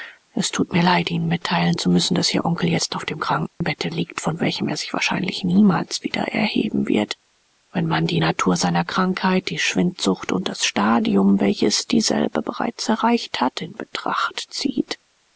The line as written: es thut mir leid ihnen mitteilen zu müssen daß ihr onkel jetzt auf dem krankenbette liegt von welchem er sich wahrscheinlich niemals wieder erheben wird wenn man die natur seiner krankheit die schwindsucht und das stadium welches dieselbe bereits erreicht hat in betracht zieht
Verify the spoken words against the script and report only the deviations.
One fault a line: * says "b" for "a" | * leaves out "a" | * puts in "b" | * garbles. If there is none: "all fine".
all fine